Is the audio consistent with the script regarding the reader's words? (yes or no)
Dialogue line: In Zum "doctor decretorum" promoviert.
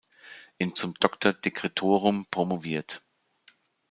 yes